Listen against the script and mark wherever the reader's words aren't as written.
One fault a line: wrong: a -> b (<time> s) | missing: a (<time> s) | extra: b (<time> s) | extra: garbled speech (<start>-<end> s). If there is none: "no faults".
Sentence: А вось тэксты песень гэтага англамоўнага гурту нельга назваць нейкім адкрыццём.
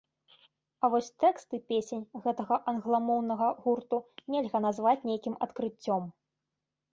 no faults